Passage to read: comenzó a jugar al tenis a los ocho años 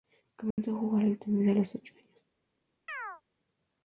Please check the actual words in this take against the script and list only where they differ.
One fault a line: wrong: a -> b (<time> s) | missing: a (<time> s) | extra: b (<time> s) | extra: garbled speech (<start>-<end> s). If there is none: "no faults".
no faults